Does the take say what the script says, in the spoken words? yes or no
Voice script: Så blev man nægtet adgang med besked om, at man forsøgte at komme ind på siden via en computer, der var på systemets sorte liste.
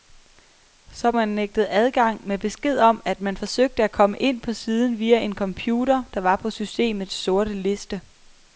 no